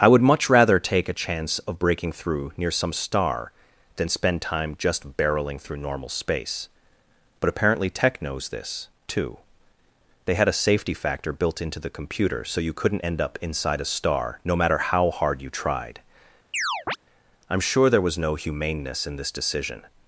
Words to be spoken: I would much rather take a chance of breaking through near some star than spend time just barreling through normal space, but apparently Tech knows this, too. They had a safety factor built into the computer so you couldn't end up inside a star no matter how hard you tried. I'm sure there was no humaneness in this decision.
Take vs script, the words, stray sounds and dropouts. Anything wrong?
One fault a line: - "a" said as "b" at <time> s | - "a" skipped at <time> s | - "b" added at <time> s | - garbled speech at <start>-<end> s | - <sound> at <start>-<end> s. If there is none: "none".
- chirp at 16.5-17.0 s